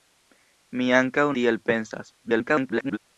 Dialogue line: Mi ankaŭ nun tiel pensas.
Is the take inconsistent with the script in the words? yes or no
yes